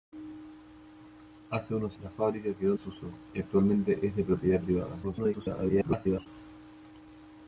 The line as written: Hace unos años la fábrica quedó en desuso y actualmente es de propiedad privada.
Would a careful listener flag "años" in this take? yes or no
yes